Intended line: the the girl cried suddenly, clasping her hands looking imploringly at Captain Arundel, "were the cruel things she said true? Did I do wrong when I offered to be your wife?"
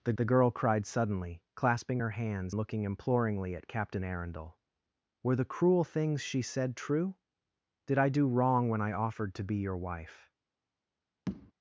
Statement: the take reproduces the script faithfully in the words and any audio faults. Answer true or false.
false